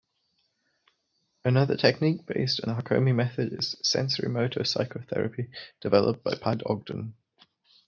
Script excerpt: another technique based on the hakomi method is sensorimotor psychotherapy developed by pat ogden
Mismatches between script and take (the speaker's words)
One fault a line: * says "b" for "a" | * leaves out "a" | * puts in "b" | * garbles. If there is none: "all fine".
all fine